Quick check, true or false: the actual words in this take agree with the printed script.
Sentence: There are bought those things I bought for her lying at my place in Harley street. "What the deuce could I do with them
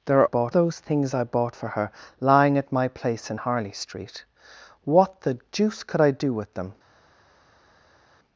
true